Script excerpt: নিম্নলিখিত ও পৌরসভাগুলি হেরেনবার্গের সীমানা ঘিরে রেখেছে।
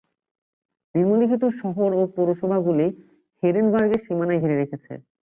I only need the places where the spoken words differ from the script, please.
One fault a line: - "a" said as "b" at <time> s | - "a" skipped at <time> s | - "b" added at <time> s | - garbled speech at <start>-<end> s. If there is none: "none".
- "শহর" added at 1.6 s